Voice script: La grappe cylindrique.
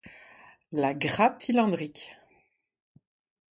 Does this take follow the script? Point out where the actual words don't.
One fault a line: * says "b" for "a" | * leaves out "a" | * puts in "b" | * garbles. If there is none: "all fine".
all fine